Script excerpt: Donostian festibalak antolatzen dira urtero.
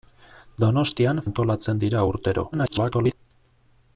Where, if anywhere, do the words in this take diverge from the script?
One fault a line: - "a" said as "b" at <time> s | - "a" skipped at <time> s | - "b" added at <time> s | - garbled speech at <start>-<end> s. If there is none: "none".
- "festibalak" skipped at 1.2 s
- garbled speech at 2.5-3.1 s